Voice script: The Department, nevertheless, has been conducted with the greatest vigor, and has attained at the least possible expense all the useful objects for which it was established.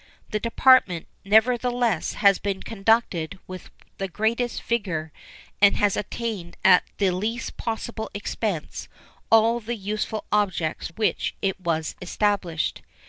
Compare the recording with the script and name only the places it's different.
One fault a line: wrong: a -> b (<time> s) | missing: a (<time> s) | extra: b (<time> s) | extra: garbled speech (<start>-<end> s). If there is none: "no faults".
missing: for (10.9 s)